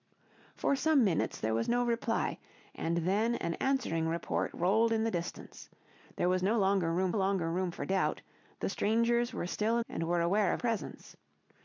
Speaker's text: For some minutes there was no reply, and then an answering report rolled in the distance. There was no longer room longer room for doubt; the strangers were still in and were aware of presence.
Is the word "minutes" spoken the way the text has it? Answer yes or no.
yes